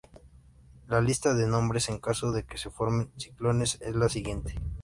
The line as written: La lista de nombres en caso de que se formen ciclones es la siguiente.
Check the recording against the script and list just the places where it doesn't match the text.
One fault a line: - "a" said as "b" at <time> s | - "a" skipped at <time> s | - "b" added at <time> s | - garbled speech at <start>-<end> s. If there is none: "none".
none